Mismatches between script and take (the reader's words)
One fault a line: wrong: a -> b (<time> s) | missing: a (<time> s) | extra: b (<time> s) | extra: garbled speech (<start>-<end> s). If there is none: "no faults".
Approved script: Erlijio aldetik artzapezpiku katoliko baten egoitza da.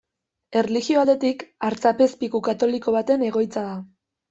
no faults